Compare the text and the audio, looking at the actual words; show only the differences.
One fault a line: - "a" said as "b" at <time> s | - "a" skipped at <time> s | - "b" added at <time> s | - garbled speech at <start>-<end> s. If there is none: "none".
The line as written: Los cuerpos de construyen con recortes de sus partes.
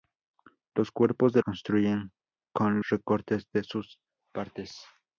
none